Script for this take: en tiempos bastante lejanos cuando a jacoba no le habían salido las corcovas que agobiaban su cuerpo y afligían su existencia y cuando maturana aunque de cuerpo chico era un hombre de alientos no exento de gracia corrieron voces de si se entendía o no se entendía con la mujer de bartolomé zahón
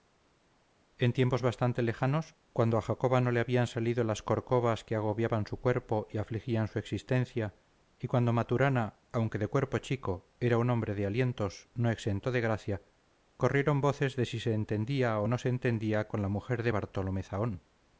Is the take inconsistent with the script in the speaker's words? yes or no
no